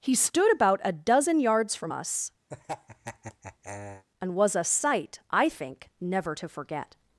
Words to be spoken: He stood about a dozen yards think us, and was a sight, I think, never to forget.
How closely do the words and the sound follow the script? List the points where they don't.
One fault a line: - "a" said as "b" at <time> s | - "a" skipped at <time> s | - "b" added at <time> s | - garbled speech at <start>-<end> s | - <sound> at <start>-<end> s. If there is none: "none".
- "think" said as "from" at 1.8 s
- laugh at 2.5-4.0 s